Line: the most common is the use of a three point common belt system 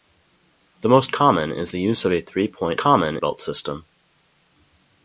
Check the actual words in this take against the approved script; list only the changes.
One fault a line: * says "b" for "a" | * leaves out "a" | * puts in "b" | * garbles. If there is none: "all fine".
all fine